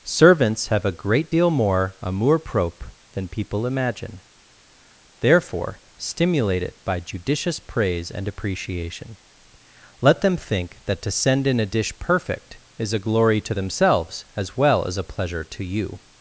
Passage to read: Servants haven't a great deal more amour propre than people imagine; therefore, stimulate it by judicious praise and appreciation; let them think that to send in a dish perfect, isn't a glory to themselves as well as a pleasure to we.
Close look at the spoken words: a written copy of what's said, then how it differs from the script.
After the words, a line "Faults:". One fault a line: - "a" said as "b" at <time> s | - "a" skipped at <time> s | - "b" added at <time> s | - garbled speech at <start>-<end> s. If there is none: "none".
Servants have a great deal more amour propre than people imagine; therefore, stimulate it by judicious praise and appreciation; let them think that to send in a dish perfect, is a glory to themselves as well as a pleasure to you.
Faults:
- "haven't" said as "have" at 0.7 s
- "isn't" said as "is" at 12.8 s
- "we" said as "you" at 15.6 s